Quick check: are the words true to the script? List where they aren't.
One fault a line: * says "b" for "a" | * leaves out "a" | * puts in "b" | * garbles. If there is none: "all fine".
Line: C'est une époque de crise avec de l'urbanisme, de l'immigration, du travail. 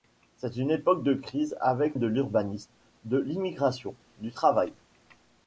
all fine